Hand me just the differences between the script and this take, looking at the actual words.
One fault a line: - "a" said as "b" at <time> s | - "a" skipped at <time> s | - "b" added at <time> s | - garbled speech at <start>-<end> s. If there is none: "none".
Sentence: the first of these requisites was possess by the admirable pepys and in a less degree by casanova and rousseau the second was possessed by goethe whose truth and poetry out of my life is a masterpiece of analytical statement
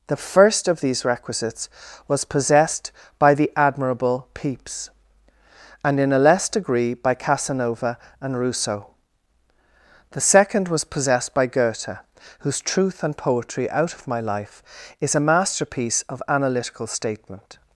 - "possess" said as "possessed" at 2.2 s